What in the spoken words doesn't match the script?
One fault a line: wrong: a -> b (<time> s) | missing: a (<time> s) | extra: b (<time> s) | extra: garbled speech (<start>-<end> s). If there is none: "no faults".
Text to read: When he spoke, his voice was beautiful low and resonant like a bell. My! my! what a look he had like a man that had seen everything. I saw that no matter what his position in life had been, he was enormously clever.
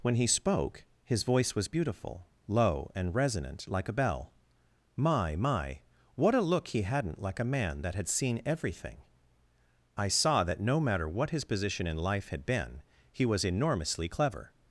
wrong: had -> hadn't (6.8 s)